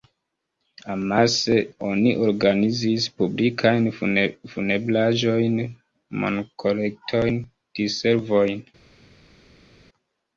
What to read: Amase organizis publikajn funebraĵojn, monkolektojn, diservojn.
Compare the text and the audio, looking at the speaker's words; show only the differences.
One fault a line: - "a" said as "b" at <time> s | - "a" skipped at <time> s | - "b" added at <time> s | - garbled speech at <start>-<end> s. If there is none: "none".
- "oni" added at 1.9 s